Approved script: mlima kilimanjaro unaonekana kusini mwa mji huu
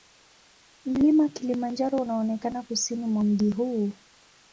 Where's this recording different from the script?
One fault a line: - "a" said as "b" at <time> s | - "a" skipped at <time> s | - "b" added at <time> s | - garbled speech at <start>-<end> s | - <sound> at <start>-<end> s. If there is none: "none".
none